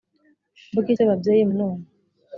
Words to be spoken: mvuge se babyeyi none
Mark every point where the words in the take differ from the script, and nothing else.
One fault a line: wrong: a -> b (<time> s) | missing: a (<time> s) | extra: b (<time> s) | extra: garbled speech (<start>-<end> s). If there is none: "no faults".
no faults